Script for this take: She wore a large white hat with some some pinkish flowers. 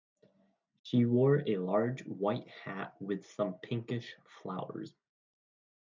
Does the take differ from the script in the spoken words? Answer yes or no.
yes